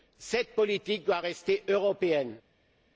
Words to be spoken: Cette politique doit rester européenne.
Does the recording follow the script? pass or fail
pass